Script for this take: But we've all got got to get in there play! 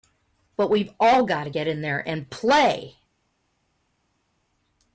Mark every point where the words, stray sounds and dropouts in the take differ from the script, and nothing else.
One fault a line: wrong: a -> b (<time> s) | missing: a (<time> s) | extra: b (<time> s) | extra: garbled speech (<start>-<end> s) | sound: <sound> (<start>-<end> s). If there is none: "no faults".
missing: got (1.4 s)
extra: and (2.1 s)